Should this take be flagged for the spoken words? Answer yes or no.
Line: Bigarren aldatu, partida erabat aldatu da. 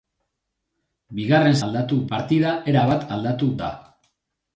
no